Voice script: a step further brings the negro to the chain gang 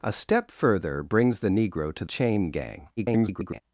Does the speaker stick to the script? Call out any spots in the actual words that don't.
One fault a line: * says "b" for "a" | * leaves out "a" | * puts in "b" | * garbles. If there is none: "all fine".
* leaves out "the"
* garbles